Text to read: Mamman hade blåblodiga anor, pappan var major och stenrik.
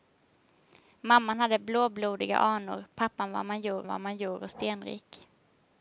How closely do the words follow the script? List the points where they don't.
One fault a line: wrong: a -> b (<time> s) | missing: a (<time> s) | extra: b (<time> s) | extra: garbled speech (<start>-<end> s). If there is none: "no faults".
extra: var major (3.9 s)